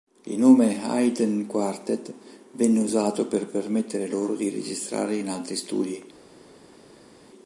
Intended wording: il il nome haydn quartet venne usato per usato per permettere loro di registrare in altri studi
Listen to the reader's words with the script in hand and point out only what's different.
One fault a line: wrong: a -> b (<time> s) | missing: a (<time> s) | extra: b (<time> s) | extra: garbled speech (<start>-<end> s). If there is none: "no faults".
missing: il (0.4 s)
missing: usato per (3.5 s)